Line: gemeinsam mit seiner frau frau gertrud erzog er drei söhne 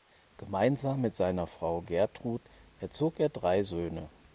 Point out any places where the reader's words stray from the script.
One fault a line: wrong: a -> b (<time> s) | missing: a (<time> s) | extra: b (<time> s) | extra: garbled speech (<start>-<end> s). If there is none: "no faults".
missing: frau (1.8 s)